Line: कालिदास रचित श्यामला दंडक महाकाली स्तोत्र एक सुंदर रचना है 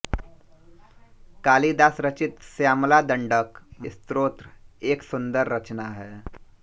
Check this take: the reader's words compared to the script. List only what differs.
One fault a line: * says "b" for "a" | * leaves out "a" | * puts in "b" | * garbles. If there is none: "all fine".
* leaves out "महाकाली"